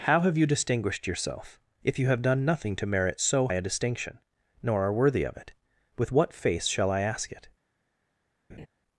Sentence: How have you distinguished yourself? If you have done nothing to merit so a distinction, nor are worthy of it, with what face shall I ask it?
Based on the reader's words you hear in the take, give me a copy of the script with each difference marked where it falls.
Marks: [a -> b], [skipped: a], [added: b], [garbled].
How have you distinguished yourself? If you have done nothing to merit so a distinction, nor are worthy of it, with what face shall I ask it?